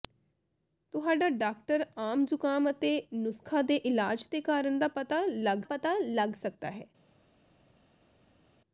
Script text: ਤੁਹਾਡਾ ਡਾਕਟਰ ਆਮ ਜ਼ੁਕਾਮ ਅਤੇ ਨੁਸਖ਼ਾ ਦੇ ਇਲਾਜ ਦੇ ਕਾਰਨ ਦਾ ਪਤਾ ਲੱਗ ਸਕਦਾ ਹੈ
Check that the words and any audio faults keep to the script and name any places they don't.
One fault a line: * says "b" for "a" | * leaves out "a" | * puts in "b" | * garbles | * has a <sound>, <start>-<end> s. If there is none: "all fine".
* puts in "ਪਤਾ ਲੱਗ"